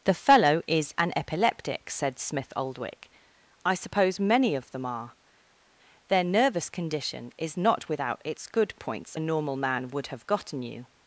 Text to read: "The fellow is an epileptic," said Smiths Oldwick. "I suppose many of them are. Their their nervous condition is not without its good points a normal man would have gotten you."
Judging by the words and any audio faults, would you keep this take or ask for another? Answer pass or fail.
fail